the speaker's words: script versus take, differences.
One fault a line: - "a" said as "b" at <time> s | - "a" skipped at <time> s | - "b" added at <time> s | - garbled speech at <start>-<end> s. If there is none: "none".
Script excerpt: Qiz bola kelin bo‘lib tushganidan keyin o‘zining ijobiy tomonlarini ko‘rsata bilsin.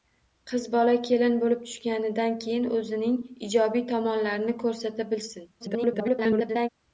- garbled speech at 5.6-6.7 s